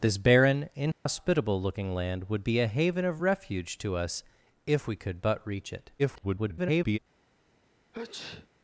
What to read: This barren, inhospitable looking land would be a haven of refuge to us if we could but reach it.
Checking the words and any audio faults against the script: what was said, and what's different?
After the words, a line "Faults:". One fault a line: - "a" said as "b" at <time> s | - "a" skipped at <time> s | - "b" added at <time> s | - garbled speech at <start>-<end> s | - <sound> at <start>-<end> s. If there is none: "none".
This barren, inhospitable looking land would be a haven of refuge to us if we could but reach it. [garbled]
Faults:
- dropout at 0.9-1.1 s
- garbled speech at 6.0-7.0 s
- sneeze at 7.9-8.5 s